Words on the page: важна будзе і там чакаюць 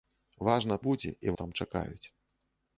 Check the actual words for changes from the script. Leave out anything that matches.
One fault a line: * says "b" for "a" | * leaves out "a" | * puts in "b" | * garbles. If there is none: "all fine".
all fine